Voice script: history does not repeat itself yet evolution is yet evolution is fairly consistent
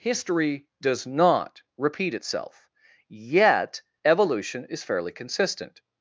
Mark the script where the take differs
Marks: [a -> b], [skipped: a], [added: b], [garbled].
history does not repeat itself yet evolution is [skipped: yet evolution is] fairly consistent